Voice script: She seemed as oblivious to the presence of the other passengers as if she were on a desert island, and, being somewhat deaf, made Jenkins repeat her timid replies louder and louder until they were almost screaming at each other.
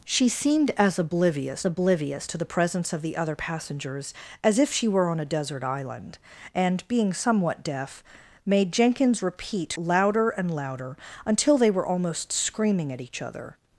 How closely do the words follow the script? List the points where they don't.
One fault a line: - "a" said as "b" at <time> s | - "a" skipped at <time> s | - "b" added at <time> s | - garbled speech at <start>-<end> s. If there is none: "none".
- "oblivious" added at 1.6 s
- "her timid replies" skipped at 9.7 s